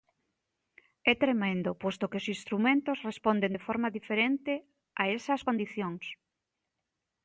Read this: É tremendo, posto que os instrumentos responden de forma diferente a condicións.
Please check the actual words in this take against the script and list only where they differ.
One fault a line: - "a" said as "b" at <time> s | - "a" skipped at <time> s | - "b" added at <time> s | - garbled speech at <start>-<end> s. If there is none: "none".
- "esas" added at 5.2 s